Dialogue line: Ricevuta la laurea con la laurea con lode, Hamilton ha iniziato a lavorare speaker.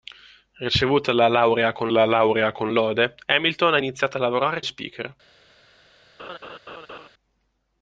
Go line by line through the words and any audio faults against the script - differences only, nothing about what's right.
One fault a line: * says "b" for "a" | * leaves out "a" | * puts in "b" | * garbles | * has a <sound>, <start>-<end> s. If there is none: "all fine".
* has a laugh, 6.2-7.1 s